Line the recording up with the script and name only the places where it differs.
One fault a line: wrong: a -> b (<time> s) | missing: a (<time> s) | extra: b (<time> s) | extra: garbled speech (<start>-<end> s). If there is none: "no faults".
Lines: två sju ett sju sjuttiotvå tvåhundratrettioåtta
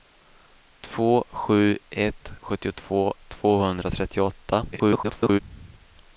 missing: sju (2.3 s)
extra: garbled speech (4.7-5.4 s)